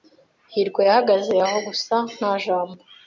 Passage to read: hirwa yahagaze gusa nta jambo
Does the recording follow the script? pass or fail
fail